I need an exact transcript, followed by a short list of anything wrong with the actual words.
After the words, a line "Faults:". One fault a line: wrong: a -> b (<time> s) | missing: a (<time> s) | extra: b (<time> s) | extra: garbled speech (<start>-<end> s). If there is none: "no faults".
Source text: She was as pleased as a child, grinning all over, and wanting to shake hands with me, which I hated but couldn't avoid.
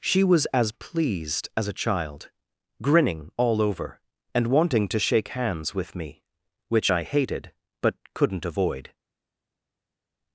She was as pleased as a child, grinning all over, and wanting to shake hands with me, which I hated but couldn't avoid.
Faults:
no faults